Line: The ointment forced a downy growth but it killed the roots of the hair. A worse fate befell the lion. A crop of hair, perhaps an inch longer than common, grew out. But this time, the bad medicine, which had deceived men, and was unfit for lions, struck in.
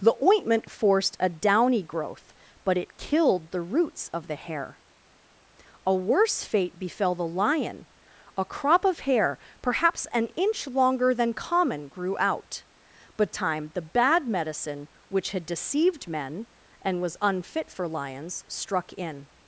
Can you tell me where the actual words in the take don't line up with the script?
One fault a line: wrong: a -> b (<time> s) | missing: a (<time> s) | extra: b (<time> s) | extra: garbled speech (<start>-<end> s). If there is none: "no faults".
missing: this (13.3 s)